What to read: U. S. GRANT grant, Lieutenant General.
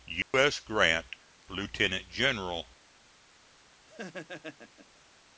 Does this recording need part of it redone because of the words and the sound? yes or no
yes